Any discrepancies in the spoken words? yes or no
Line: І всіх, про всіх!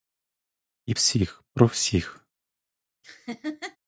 no